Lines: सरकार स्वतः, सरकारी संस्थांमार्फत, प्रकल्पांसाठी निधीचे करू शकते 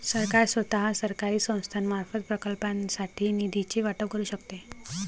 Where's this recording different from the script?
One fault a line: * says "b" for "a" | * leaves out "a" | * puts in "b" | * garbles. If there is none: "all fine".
* puts in "वाटप"